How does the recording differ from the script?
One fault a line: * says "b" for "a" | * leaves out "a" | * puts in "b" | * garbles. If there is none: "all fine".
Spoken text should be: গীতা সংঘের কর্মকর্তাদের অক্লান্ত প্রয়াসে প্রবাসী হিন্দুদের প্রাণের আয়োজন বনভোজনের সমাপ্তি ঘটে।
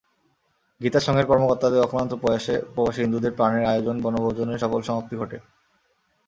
* puts in "সফল"